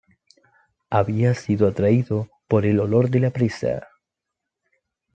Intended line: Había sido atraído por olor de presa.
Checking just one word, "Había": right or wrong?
right